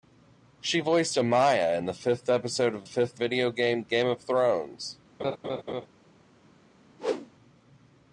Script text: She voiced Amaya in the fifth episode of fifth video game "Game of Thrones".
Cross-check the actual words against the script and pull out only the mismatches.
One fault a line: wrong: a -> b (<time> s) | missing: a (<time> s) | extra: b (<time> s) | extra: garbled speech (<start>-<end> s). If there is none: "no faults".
no faults